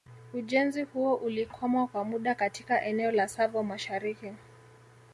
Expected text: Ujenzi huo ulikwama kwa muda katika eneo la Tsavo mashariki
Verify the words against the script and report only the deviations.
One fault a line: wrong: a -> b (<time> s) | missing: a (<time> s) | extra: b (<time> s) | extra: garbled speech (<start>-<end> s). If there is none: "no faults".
no faults